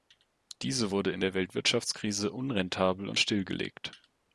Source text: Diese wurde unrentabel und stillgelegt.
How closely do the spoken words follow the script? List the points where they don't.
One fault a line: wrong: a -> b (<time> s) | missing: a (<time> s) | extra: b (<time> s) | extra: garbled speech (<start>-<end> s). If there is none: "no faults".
extra: in der Weltwirtschaftskrise (1.1 s)